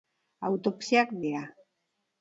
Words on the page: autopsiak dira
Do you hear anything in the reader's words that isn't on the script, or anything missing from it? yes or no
no